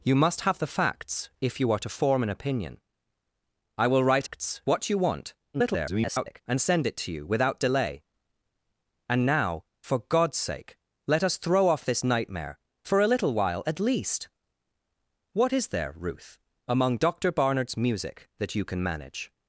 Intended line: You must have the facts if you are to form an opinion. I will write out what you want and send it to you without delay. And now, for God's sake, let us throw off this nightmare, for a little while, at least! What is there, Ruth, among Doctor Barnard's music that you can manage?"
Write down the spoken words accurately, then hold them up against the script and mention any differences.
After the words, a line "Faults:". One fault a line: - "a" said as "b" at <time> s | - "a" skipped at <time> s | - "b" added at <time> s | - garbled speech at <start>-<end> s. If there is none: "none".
You must have the facts if you are to form an opinion. I will write facts what you want [garbled] and send it to you without delay. And now, for God's sake, let us throw off this nightmare, for a little while, at least! What is there, Ruth, among Doctor Barnard's music that you can manage?"
Faults:
- "out" said as "facts" at 4.2 s
- garbled speech at 5.5-6.4 s